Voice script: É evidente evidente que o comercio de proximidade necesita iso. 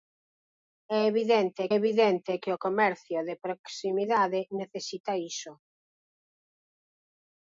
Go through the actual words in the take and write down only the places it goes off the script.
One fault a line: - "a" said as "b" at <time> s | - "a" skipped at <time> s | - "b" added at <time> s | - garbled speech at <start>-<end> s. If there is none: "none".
none